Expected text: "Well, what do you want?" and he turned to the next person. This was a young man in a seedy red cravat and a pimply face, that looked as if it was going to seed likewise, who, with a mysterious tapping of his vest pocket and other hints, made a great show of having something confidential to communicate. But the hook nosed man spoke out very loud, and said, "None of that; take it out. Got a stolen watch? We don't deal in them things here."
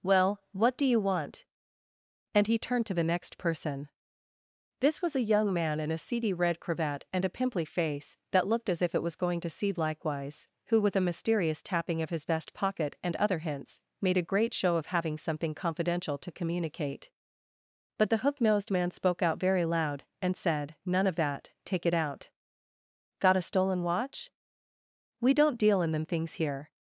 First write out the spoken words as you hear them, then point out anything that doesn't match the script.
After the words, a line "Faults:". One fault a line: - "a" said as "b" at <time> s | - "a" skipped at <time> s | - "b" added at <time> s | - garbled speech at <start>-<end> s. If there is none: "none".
"Well, what do you want?" and he turned to the next person. This was a young man in a seedy red cravat and a pimply face, that looked as if it was going to seed likewise, who, with a mysterious tapping of his vest pocket and other hints, made a great show of having something confidential to communicate. But the hook nosed man spoke out very loud, and said, "None of that; take it out. Got a stolen watch? We don't deal in them things here."
Faults:
none